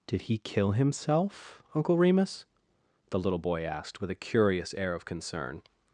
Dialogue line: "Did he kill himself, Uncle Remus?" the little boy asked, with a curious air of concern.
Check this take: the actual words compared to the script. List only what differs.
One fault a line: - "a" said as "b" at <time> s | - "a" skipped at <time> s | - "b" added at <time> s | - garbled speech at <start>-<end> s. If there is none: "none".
none